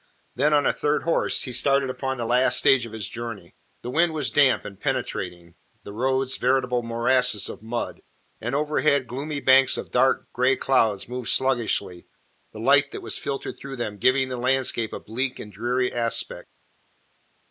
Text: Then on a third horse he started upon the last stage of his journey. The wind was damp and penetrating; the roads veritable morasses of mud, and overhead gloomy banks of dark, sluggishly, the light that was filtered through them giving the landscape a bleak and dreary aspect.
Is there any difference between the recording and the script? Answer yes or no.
yes